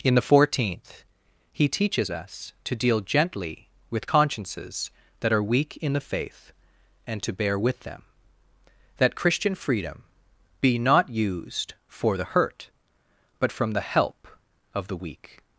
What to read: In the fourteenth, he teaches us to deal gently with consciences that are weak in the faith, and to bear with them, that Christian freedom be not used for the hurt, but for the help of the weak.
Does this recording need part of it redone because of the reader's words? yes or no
yes